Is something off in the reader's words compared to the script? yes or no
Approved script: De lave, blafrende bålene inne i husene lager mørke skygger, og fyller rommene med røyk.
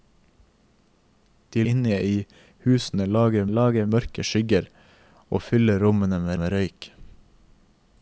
yes